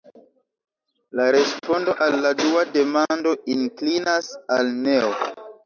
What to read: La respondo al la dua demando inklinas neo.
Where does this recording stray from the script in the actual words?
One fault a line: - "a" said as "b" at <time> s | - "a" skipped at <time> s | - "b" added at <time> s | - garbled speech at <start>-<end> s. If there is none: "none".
- "al" added at 4.6 s